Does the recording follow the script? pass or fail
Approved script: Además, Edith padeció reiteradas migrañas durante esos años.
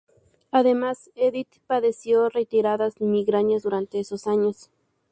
pass